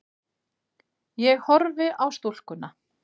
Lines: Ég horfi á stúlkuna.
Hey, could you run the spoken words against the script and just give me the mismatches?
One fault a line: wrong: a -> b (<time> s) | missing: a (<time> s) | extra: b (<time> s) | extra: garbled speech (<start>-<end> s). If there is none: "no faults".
no faults